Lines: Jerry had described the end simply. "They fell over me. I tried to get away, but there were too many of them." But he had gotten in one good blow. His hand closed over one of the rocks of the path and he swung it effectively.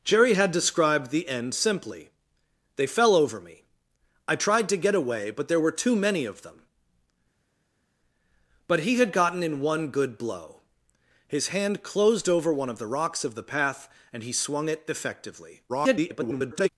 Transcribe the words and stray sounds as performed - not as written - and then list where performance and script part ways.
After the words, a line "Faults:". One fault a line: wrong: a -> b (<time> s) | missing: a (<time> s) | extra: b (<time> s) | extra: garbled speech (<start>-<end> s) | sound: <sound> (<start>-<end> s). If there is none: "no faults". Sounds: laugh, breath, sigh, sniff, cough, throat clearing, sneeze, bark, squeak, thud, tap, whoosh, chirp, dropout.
Jerry had described the end simply. "They fell over me. I tried to get away, but there were too many of them." But he had gotten in one good blow. His hand closed over one of the rocks of the path and he swung it effectively. [garbled]
Faults:
extra: garbled speech (15.7-16.7 s)